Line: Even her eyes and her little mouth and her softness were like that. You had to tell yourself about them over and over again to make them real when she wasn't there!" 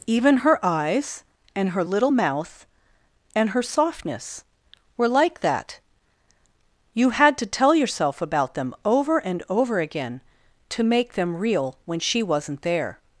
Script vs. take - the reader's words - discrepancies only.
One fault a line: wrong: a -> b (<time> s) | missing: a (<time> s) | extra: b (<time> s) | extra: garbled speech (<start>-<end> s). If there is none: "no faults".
no faults